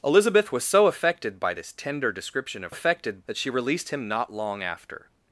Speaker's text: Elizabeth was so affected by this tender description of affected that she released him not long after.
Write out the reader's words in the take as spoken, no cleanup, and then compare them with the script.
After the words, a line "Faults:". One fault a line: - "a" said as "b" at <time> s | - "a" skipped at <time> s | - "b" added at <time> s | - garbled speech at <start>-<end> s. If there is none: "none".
Elizabeth was so affected by this tender description of affected that she released him not long after.
Faults:
none